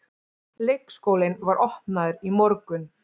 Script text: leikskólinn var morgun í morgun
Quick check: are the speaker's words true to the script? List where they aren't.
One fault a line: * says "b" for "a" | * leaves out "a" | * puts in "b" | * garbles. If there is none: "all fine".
* says "opnaður" for "morgun"